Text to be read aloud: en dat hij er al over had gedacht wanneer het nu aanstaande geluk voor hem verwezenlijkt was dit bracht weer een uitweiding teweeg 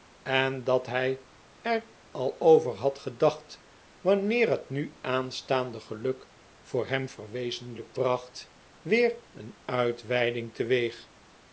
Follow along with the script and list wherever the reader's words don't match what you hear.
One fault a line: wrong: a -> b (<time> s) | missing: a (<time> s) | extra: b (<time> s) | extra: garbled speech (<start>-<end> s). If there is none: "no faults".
missing: was dit (8.0 s)